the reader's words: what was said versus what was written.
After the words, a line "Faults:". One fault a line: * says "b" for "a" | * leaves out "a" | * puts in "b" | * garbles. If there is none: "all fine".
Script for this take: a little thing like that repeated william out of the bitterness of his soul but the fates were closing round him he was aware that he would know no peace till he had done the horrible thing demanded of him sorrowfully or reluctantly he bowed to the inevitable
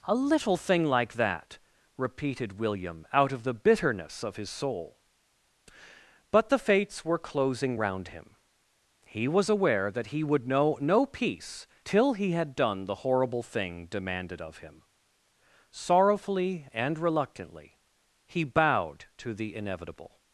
a little thing like that repeated william out of the bitterness of his soul but the fates were closing round him he was aware that he would know no peace till he had done the horrible thing demanded of him sorrowfully and reluctantly he bowed to the inevitable
Faults:
* says "and" for "or"